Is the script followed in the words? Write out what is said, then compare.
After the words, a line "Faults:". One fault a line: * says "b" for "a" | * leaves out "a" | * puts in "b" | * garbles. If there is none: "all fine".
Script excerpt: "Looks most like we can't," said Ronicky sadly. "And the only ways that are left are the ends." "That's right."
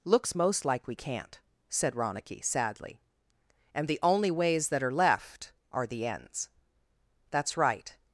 "Looks most like we can't," said Ronicky sadly. "And the only ways that are left are the ends." "That's right."
Faults:
all fine